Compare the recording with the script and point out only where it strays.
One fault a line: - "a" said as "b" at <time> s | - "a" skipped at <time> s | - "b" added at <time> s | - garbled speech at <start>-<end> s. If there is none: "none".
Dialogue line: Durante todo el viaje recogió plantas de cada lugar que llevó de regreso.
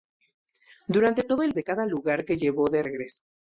- "viaje recogió plantas" skipped at 1.5 s